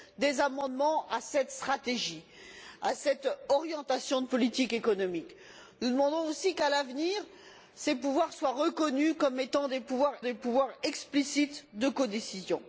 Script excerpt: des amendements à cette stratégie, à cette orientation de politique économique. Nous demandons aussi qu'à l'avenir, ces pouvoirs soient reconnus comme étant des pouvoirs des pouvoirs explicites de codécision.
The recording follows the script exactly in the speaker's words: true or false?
true